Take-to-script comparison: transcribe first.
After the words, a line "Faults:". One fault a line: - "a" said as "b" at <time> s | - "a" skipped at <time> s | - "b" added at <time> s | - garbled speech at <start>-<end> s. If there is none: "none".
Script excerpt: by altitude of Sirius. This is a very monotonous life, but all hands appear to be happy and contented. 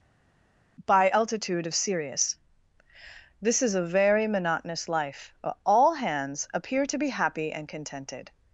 by altitude of Sirius. This is a very monotonous life, all hands appear to be happy and contented.
Faults:
- "but" skipped at 5.3 s